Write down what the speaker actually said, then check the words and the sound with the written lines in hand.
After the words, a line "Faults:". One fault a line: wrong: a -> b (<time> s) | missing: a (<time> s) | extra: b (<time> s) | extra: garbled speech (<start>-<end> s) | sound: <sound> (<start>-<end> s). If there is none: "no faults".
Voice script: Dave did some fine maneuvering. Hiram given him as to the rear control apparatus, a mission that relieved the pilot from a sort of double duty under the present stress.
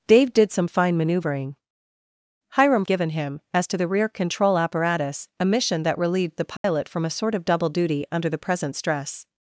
Dave did some fine maneuvering. Hiram given him as to the rear control apparatus, a mission that relieved the pilot from a sort of double duty under the present stress.
Faults:
sound: dropout (6.6-6.6 s)